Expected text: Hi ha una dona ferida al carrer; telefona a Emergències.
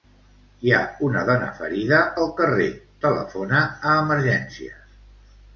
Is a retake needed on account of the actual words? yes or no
no